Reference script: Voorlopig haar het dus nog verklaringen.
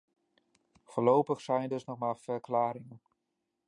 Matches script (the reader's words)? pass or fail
fail